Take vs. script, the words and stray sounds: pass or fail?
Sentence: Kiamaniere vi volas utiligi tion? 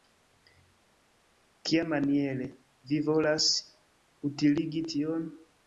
pass